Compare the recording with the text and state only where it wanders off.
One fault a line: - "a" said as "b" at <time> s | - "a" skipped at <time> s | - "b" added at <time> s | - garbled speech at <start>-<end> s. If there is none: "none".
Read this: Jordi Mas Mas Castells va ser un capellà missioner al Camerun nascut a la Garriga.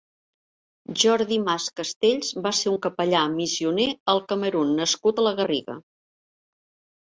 - "Mas" skipped at 1.7 s